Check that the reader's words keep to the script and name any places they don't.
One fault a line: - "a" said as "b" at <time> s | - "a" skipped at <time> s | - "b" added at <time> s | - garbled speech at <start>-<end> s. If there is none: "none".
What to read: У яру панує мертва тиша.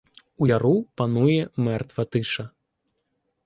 none